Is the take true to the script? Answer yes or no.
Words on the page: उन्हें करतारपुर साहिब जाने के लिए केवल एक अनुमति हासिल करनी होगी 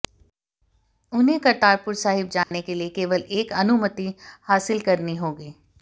yes